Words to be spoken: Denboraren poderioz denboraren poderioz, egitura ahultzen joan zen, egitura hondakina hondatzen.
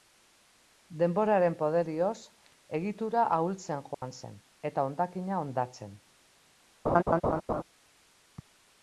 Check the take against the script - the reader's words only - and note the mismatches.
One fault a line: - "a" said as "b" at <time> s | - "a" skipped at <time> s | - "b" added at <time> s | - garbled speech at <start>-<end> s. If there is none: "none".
- "denboraren poderioz" skipped at 2.1 s
- "egitura" said as "eta" at 4.7 s